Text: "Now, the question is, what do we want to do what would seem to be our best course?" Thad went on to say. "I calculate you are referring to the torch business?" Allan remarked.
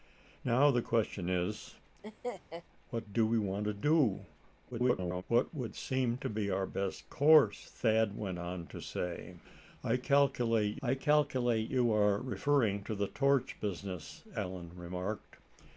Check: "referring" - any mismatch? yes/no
no